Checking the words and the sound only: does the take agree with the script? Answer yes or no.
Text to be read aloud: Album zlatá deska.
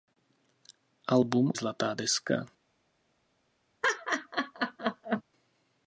no